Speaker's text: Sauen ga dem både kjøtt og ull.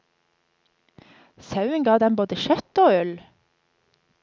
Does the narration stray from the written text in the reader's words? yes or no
no